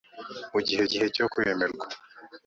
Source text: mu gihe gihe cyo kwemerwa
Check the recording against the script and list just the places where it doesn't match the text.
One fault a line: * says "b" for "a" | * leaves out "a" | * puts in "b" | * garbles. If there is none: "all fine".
all fine